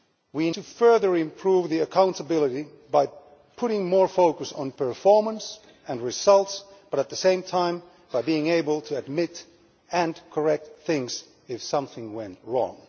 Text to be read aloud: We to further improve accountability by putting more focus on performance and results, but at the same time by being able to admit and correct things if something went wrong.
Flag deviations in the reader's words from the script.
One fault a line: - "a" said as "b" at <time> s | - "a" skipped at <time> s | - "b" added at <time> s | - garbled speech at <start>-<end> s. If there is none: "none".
none